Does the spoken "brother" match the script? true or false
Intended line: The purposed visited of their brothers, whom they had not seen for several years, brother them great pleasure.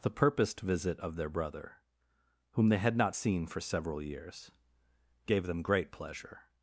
false